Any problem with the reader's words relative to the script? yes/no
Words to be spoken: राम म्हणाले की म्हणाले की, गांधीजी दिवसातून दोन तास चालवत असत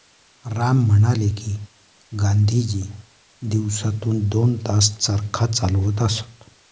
yes